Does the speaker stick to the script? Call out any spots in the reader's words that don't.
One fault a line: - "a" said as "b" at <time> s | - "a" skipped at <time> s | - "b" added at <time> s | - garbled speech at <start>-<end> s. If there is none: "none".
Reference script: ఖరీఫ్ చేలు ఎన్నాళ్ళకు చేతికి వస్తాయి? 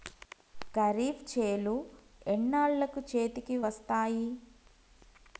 none